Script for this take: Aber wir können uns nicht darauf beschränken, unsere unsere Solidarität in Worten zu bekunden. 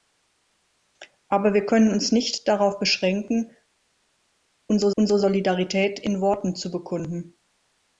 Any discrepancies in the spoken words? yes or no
no